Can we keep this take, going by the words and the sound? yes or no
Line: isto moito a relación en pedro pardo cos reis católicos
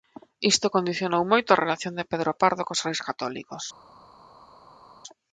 no